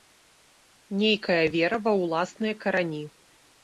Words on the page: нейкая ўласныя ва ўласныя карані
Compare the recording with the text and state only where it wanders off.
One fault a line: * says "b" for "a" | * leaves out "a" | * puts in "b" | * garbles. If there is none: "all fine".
* says "вера" for "ўласныя"